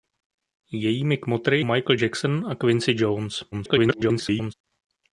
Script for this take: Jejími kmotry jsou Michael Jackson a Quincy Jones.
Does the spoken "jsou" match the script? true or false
false